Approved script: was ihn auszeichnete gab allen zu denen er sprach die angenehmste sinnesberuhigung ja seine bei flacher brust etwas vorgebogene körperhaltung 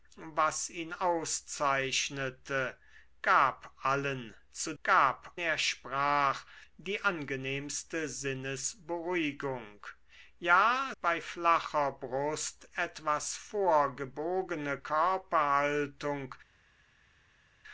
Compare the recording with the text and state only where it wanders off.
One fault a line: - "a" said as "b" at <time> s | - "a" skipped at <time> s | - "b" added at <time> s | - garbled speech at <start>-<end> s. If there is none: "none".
- "denen" said as "gab" at 4.8 s
- "seine" skipped at 10.9 s